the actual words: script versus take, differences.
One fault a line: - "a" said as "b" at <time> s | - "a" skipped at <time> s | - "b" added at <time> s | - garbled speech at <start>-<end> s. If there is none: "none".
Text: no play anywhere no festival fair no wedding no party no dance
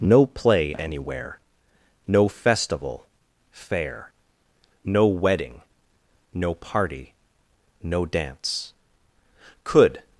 - "could" added at 9.6 s